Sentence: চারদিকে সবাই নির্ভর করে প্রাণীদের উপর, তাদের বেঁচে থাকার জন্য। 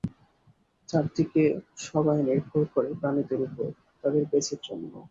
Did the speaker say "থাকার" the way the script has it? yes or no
no